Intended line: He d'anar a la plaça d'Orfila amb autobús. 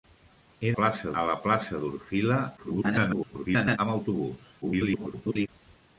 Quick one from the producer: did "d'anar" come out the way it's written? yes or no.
no